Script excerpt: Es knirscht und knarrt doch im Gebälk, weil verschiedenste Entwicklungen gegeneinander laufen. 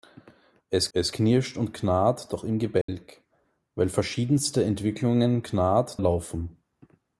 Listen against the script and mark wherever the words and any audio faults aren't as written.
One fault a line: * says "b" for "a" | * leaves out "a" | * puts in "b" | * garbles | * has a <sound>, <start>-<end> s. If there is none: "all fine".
* puts in "es"
* has a dropout, 2.8-2.9 s
* says "knarrt" for "gegeneinander"